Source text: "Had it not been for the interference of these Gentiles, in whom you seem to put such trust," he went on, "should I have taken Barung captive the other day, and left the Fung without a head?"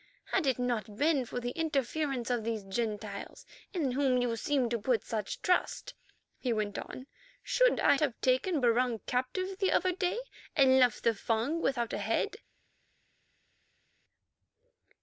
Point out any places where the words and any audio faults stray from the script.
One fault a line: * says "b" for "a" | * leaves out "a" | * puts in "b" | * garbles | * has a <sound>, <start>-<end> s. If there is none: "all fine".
all fine